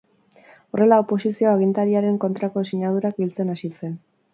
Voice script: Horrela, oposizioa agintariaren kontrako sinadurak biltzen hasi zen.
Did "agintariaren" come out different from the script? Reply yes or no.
no